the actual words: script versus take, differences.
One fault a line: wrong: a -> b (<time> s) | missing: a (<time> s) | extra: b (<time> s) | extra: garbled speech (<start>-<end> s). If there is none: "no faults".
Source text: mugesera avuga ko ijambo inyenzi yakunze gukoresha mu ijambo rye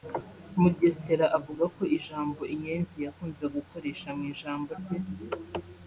no faults